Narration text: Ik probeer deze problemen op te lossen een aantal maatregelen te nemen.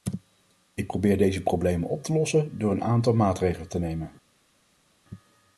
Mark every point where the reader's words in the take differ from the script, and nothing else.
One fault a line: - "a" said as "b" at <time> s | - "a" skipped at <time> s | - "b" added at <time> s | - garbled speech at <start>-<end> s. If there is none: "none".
- "door" added at 2.6 s